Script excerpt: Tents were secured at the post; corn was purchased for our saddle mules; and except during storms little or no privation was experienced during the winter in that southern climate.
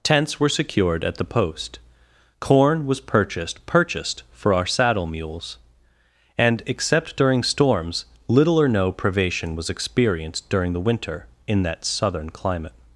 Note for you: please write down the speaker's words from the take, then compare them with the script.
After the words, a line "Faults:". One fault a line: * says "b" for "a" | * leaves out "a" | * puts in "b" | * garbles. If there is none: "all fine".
Tents were secured at the post; corn was purchased purchased for our saddle mules; and except during storms little or no privation was experienced during the winter in that southern climate.
Faults:
* puts in "purchased"